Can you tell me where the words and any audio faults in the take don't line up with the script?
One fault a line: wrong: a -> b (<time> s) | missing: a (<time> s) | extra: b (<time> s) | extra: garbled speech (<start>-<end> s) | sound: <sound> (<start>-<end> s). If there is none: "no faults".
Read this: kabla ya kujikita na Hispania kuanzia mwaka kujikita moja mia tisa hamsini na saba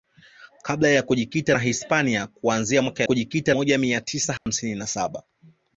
sound: dropout (4.4-4.5 s)